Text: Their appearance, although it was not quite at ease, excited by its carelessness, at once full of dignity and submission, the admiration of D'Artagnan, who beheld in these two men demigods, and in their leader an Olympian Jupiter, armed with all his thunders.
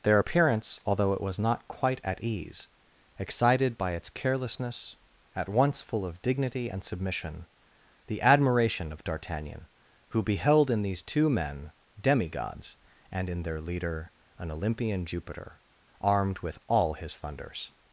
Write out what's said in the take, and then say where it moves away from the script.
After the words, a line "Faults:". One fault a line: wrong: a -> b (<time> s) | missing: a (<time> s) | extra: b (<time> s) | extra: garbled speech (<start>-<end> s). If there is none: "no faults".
Their appearance, although it was not quite at ease, excited by its carelessness, at once full of dignity and submission, the admiration of D'Artagnan, who beheld in these two men demigods, and in their leader an Olympian Jupiter, armed with all his thunders.
Faults:
no faults